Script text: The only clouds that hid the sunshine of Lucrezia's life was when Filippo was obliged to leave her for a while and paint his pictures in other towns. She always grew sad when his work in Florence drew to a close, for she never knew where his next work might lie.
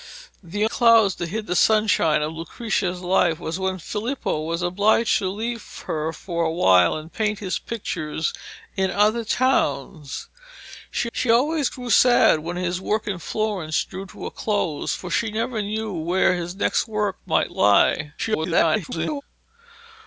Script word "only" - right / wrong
wrong